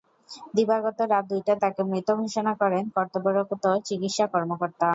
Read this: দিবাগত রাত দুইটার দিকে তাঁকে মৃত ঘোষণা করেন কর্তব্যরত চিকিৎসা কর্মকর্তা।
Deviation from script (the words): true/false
true